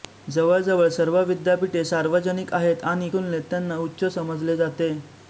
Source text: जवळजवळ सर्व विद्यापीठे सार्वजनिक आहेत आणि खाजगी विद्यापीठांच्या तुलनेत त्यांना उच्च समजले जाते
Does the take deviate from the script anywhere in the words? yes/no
yes